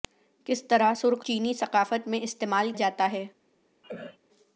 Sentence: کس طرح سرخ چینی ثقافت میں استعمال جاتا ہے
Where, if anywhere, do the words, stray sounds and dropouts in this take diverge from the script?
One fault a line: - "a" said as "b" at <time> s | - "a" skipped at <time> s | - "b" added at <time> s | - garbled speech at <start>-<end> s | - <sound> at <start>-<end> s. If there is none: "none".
- cough at 3.8-4.2 s